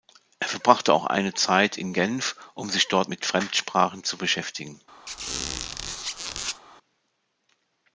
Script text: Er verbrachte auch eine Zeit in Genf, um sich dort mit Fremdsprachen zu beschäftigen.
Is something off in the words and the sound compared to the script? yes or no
yes